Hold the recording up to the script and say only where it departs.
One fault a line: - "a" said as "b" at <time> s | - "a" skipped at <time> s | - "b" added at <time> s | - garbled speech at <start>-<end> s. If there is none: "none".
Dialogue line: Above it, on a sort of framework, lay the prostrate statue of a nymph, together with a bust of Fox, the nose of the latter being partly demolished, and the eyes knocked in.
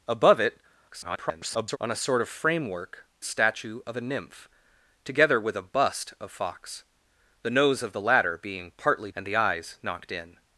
- garbled speech at 0.9-1.8 s
- "lay the prostrate" skipped at 3.0 s
- "demolished" skipped at 9.1 s